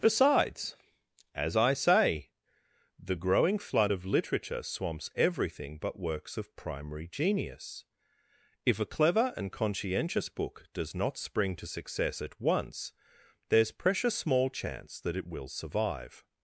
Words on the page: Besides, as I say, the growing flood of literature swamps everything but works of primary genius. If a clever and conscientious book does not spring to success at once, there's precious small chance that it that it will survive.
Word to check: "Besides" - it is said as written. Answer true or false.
true